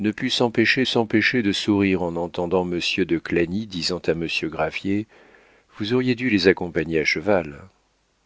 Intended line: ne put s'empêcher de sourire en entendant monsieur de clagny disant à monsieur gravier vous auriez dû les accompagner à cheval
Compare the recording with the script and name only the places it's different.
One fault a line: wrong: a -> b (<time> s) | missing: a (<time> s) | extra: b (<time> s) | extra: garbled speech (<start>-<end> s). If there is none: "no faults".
extra: s'empêcher (0.9 s)